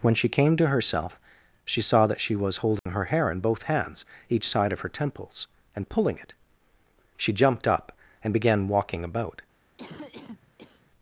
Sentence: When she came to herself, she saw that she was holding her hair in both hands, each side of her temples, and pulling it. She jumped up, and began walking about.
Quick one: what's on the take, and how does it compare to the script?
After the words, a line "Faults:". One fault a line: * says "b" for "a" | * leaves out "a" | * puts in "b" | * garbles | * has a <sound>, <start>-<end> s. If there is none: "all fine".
When she came to herself, she saw that she was holding her hair in both hands, each side of her temples, and pulling it. She jumped up, and began walking about.
Faults:
* has a dropout, 2.8-2.9 s
* has a cough, 9.8-10.9 s